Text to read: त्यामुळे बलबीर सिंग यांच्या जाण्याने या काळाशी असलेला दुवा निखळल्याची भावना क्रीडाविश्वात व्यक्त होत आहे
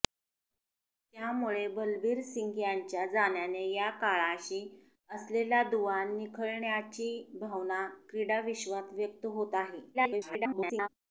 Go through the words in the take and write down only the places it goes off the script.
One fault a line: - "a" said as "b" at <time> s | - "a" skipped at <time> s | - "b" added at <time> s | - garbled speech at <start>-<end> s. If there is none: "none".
- garbled speech at 9.9-10.9 s